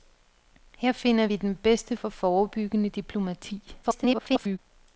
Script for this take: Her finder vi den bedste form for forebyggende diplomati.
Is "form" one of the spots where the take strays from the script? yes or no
yes